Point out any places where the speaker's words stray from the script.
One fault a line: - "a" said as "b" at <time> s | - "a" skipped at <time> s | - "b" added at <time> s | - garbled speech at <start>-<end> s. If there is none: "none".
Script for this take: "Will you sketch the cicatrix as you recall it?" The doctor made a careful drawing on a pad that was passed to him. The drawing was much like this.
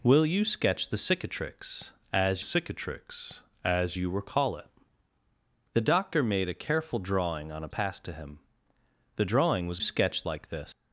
- "cicatrix as" added at 2.4 s
- "pad that was" skipped at 7.7 s
- "much" said as "sketch" at 9.8 s